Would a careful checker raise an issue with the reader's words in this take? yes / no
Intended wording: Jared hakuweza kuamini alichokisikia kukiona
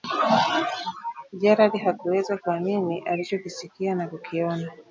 yes